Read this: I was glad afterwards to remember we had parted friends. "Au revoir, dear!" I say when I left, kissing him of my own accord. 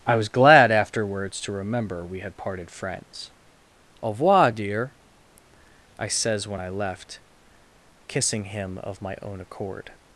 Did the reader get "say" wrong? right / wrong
wrong